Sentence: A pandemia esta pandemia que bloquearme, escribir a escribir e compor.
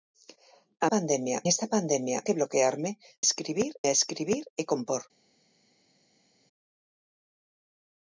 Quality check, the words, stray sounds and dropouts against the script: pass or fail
pass